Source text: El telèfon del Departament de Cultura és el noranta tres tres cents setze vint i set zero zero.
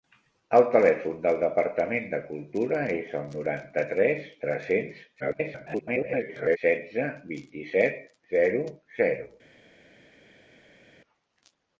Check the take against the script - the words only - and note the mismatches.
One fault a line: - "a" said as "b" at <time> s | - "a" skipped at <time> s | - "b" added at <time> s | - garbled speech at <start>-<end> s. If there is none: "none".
- garbled speech at 5.2-6.6 s